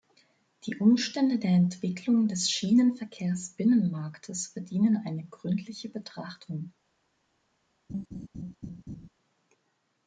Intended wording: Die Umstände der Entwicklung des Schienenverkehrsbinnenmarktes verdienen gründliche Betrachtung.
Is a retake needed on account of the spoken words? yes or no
yes